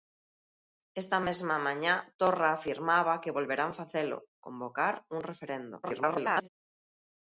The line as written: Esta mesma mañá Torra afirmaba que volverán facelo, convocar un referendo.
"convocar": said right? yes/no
yes